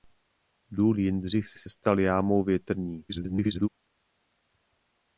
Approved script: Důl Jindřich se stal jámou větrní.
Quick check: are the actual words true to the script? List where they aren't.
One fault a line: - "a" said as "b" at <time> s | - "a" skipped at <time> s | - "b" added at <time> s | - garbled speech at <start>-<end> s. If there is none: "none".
- "se" added at 1.6 s
- garbled speech at 3.1-3.7 s